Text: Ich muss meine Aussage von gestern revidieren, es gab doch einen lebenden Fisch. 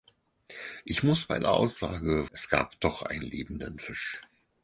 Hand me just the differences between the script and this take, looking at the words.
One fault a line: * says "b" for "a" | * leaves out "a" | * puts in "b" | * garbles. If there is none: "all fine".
* leaves out "von gestern revidieren"